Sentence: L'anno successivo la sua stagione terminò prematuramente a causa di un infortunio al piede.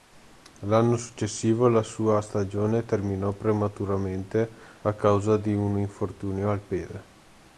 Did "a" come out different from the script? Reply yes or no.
no